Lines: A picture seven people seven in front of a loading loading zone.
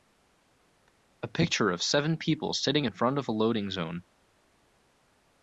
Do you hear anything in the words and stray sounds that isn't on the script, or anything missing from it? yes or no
yes